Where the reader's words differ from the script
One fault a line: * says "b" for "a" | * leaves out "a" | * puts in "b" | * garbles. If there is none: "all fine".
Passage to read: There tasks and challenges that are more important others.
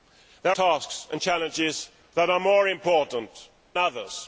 all fine